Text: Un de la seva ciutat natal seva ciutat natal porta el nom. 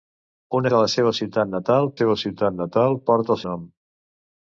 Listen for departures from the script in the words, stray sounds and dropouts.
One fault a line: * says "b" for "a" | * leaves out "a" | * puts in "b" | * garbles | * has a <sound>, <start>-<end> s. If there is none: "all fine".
all fine